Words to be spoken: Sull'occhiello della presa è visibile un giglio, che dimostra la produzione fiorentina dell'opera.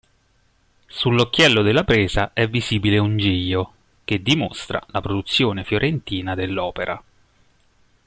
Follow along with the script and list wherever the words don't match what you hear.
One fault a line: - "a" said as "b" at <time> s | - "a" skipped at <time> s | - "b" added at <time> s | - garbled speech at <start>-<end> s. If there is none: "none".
none